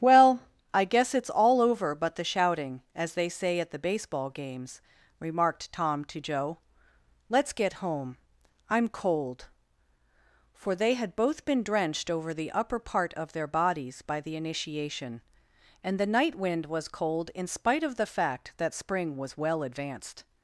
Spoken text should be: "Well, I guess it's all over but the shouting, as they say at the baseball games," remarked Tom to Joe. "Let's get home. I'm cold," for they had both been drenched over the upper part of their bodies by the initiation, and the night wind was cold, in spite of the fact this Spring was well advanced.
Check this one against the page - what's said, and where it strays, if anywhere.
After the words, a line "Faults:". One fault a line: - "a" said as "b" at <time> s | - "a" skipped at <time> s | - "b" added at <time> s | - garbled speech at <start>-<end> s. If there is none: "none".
"Well, I guess it's all over but the shouting, as they say at the baseball games," remarked Tom to Joe. "Let's get home. I'm cold," for they had both been drenched over the upper part of their bodies by the initiation, and the night wind was cold, in spite of the fact that Spring was well advanced.
Faults:
- "this" said as "that" at 18.6 s